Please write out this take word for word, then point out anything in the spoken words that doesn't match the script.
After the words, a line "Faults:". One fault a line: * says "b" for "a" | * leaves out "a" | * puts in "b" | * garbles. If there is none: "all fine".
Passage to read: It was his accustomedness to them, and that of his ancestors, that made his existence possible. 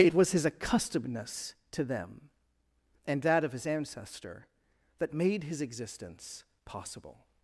It was his accustomedness to them, and that of his ancestor, that made his existence possible.
Faults:
* says "ancestor" for "ancestors"